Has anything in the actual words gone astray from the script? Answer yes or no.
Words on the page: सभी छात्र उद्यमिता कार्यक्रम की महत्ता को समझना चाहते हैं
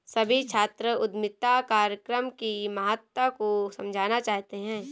no